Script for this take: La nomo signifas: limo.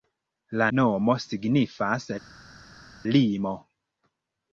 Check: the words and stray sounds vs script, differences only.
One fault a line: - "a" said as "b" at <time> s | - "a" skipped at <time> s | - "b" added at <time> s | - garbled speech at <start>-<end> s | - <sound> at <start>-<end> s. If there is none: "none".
none